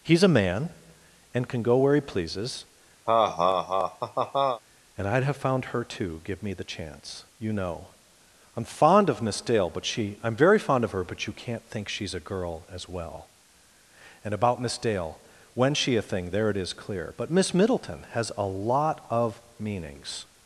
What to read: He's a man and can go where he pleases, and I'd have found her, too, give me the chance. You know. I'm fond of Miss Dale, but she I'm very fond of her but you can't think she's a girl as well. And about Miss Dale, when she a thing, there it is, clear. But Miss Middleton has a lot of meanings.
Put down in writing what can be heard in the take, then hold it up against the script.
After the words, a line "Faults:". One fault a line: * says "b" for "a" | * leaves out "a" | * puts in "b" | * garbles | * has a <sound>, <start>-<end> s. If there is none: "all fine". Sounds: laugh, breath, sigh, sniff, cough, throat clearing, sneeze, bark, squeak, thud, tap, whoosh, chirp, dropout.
He's a man and can go where he pleases, and I'd have found her, too, give me the chance. You know. I'm fond of Miss Dale, but she I'm very fond of her but you can't think she's a girl as well. And about Miss Dale, when she a thing, there it is, clear. But Miss Middleton has a lot of meanings.
Faults:
* has a laugh, 3.1-4.6 s